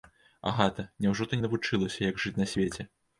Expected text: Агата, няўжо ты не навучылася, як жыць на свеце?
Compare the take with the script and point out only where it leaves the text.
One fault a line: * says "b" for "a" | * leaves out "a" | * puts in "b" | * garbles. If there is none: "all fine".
all fine